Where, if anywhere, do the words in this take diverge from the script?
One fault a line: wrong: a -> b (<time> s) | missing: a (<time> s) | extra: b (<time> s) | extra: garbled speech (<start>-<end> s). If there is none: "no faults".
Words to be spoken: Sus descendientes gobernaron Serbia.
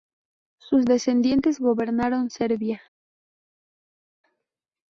no faults